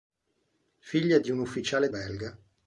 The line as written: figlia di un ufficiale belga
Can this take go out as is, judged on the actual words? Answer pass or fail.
pass